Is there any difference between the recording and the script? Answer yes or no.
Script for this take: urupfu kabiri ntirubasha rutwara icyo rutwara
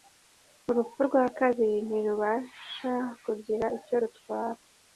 yes